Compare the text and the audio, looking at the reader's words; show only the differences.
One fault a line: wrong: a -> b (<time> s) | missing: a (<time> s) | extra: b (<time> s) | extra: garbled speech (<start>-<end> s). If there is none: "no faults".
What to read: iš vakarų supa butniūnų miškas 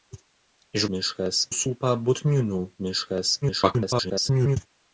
wrong: vakarų -> miškas (1.0 s)
extra: garbled speech (3.4-4.6 s)